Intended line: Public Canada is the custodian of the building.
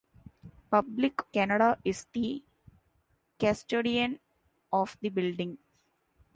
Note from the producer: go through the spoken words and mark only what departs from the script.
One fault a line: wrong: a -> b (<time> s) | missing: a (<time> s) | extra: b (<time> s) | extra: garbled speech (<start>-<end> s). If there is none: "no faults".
no faults